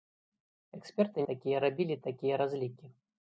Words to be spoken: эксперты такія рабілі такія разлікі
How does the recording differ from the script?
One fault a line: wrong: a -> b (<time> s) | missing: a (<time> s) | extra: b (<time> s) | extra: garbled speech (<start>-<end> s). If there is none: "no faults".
no faults